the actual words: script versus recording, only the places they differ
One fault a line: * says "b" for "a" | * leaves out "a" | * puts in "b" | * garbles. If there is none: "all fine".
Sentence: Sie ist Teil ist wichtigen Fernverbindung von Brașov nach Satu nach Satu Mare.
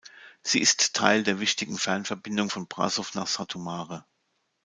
* says "der" for "ist"
* leaves out "nach Satu"